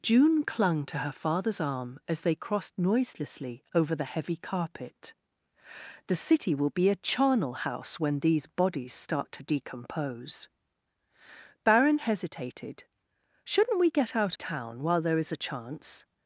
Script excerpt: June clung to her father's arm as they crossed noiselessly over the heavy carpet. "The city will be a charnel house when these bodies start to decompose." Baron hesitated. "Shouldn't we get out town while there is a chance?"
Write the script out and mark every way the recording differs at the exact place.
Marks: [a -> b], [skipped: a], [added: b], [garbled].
June clung to her father's arm as they crossed noiselessly over the heavy carpet. "The city will be a charnel house when these bodies start to decompose." Baron hesitated. "Shouldn't we get out town while there is a chance?"